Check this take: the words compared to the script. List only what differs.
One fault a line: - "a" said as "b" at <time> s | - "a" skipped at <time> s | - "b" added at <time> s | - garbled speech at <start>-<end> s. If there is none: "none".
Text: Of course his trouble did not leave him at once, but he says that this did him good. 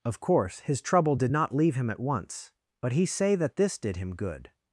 - "says" said as "say" at 3.1 s